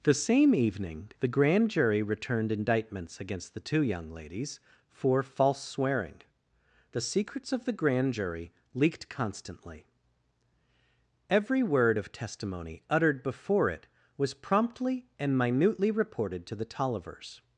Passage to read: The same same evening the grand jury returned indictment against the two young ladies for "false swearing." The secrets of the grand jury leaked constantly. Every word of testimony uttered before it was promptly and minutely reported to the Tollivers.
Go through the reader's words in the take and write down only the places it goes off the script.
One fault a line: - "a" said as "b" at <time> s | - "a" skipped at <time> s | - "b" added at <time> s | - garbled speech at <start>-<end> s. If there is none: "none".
- "same" skipped at 0.6 s
- "indictment" said as "indictments" at 2.5 s